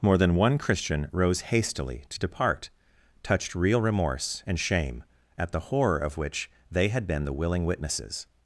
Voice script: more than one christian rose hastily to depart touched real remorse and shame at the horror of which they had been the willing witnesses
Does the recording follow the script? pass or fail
pass